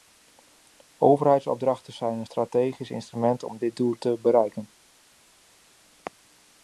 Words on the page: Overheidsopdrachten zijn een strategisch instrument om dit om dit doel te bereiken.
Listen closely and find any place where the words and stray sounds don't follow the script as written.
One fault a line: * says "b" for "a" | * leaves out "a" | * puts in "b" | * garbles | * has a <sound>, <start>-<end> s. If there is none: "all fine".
* leaves out "om dit"